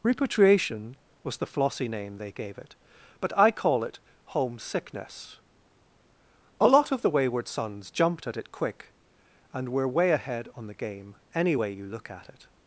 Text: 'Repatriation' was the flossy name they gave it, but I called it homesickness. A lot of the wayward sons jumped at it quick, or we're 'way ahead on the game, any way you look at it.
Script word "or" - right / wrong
wrong